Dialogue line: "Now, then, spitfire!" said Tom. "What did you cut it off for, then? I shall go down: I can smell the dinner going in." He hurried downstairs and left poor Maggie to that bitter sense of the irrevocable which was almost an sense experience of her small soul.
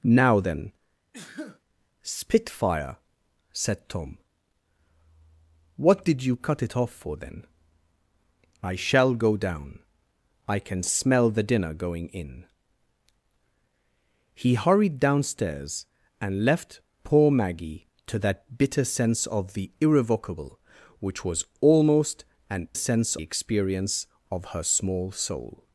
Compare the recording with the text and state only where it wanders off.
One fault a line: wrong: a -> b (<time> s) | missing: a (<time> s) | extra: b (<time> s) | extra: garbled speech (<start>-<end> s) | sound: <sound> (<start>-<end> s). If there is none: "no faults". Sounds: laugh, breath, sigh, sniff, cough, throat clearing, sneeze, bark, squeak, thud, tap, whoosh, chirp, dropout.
sound: sneeze (1.1-1.6 s)